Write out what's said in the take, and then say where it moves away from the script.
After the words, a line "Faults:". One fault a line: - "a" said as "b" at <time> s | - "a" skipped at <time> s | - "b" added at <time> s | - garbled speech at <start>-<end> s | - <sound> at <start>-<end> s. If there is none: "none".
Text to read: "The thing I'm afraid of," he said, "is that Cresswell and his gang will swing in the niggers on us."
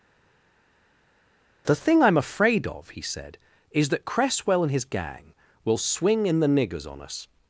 "The thing I'm afraid of," he said, "is that Cresswell and his gang will swing in the niggers on us."
Faults:
none